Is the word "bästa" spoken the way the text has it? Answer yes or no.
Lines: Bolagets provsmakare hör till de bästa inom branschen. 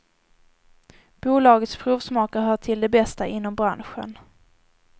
yes